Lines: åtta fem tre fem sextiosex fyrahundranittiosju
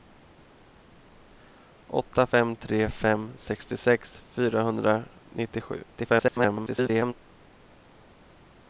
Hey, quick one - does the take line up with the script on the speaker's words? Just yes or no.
no